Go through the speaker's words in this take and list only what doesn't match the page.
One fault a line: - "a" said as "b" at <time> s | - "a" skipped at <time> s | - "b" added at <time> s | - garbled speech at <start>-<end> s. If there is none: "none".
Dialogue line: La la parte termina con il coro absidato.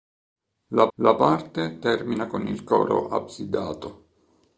none